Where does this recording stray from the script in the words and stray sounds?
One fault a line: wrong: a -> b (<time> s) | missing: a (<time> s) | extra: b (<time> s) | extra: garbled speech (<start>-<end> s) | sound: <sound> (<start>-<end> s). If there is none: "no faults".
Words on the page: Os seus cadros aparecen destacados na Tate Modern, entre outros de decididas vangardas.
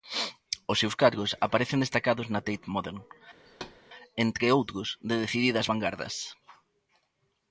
sound: thud (3.5-3.8 s)